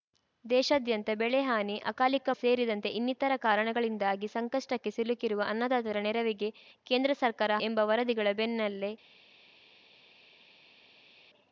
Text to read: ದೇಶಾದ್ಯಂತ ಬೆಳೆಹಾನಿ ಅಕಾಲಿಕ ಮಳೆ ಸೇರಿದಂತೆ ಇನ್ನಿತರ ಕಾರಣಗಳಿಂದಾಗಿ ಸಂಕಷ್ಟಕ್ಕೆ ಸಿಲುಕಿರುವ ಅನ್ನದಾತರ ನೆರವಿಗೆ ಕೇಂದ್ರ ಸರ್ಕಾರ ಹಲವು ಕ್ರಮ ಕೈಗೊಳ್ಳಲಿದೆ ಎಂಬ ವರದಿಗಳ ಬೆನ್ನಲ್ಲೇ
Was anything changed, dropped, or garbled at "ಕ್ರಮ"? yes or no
yes